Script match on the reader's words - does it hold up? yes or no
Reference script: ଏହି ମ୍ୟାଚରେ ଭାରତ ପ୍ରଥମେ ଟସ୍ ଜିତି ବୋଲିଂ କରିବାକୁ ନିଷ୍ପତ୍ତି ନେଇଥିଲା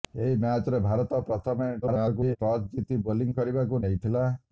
no